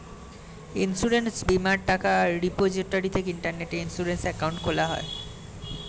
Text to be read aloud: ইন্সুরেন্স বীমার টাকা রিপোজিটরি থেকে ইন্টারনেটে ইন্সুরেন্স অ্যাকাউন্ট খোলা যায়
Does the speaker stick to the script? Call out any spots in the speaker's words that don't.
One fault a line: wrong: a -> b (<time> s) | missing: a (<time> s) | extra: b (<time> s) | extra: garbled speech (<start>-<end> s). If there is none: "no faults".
no faults